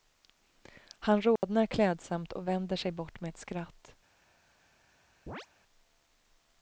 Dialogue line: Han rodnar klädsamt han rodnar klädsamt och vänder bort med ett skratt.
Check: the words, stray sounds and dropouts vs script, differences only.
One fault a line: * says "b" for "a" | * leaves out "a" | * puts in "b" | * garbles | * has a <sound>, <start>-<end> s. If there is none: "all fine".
* has a dropout, 1.4-1.4 s
* leaves out "han rodnar klädsamt"
* puts in "sig"
* has a chirp, 5.3-5.5 s